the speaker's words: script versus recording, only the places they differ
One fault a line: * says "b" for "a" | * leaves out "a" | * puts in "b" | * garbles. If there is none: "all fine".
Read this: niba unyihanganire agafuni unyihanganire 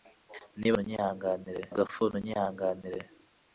all fine